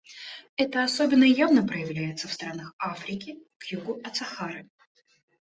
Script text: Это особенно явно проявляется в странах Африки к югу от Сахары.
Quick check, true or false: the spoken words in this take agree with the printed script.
true